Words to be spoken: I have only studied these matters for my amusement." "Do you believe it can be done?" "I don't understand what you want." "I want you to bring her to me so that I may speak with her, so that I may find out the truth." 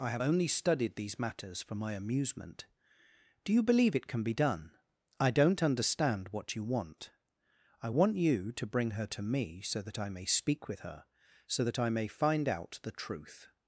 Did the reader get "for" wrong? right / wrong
right